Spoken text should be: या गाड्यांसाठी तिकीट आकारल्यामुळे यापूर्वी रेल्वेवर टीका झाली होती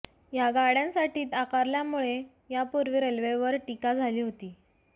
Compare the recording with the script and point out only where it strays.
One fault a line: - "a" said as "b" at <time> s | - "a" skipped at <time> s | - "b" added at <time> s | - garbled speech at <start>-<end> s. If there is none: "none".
- "तिकीट" skipped at 1.2 s